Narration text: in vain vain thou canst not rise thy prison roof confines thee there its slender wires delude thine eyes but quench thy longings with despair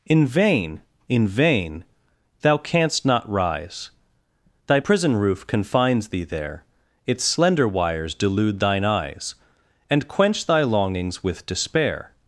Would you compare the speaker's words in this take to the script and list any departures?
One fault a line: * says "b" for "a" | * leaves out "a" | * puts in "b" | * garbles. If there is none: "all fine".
* puts in "in"
* says "and" for "but"